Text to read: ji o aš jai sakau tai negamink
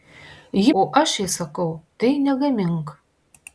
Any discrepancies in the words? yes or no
no